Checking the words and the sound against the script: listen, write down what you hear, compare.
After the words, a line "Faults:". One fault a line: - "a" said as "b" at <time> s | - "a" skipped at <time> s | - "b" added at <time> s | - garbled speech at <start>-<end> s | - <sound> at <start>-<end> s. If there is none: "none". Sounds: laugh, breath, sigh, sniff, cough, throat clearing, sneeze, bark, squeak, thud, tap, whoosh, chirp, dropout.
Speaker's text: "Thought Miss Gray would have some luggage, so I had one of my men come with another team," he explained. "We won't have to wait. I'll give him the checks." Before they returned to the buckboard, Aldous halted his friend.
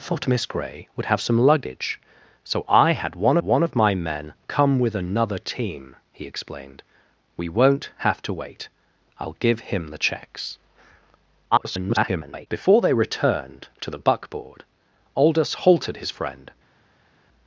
"Thought Miss Gray would have some luggage, so I had one one of my men come with another team," he explained. "We won't have to wait. I'll give him the checks." [garbled] Before they returned to the buckboard, Aldous halted his friend.
Faults:
- "one" added at 3.4 s
- garbled speech at 11.5-12.5 s